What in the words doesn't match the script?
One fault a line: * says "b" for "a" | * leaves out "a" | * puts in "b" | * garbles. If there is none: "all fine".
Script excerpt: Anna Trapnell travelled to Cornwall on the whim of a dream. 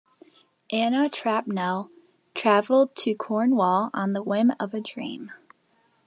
all fine